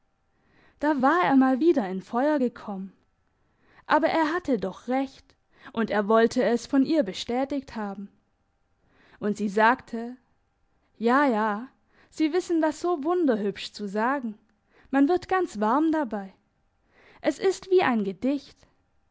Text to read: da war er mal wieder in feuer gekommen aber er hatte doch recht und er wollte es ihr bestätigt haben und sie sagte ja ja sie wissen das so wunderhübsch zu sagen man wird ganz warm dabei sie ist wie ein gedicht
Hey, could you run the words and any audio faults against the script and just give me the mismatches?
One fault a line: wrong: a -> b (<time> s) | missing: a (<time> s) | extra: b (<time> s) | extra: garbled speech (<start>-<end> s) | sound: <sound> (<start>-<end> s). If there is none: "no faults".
extra: von (6.7 s)
wrong: sie -> es (17.2 s)